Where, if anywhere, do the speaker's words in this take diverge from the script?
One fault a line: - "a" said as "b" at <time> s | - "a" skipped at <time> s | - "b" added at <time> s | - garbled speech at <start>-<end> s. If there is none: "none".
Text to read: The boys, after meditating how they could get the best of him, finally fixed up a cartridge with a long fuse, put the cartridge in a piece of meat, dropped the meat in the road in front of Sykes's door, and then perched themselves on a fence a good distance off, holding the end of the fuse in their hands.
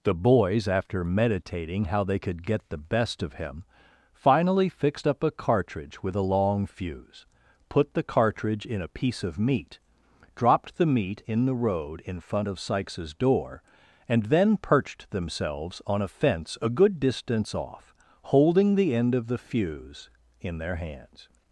none